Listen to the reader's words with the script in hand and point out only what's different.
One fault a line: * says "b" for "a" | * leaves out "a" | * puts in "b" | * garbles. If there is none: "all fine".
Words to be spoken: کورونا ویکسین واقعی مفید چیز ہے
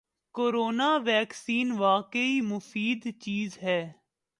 all fine